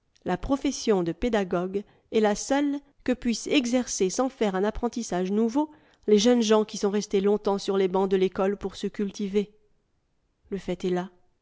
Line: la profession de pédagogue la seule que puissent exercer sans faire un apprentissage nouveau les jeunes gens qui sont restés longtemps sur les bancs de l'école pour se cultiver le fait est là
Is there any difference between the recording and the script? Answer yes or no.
yes